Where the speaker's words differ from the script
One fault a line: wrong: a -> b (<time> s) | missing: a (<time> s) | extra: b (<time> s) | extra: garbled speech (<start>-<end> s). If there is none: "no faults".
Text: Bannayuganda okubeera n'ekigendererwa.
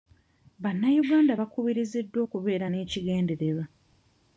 extra: bakubiriziddwa (1.4 s)